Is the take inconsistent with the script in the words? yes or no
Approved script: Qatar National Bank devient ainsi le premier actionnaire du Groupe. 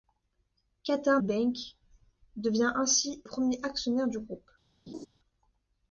yes